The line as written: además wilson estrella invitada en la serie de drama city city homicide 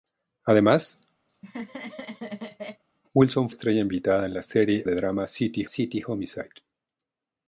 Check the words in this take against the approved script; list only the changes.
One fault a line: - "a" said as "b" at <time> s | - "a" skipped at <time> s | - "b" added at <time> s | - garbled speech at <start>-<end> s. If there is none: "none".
none